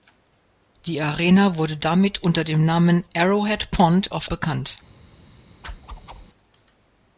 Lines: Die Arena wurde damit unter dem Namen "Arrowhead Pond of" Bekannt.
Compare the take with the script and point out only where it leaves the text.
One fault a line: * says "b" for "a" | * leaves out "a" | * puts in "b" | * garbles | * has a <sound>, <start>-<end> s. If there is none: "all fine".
* has a whoosh, 5.6-6.3 s